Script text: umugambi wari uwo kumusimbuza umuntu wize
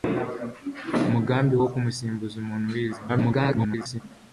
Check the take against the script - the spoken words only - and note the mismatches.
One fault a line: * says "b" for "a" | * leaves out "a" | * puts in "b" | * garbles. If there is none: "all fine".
* leaves out "wari"
* garbles